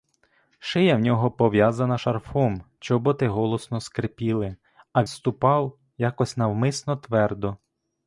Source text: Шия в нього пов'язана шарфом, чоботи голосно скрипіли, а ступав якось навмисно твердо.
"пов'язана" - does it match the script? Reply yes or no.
yes